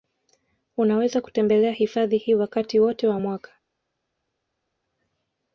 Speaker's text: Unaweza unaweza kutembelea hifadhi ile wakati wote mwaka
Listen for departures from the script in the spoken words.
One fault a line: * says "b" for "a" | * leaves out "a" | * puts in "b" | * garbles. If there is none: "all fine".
* leaves out "unaweza"
* says "hii" for "ile"
* puts in "wa"